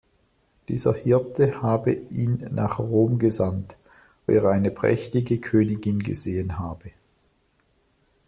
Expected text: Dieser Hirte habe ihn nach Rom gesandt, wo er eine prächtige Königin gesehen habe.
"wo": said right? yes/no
no